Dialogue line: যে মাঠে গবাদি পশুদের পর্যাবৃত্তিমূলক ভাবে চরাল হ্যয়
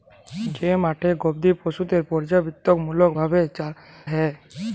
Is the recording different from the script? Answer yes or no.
yes